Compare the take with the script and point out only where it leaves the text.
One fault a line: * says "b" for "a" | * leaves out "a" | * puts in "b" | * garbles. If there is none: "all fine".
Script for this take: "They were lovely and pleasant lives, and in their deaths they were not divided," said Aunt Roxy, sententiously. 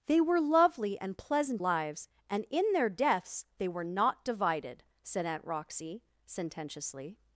all fine